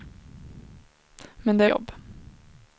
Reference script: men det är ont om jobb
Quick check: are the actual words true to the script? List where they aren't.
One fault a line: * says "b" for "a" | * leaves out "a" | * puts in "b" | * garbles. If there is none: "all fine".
* leaves out "är ont om"